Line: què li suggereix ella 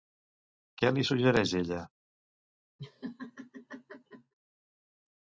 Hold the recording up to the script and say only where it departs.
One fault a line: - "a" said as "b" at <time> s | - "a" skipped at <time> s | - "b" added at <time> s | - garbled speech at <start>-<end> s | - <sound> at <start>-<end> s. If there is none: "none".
- laugh at 2.8-4.3 s